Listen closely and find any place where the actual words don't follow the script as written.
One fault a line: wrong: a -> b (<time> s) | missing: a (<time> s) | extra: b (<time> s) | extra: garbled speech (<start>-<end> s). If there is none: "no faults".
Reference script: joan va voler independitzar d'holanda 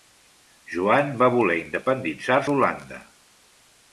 no faults